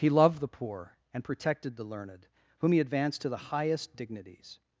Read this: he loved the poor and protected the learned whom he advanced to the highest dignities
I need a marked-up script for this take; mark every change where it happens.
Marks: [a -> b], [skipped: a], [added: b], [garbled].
he loved the poor and protected the learned whom he advanced to the highest dignities